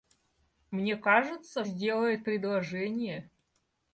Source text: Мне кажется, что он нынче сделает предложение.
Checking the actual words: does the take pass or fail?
fail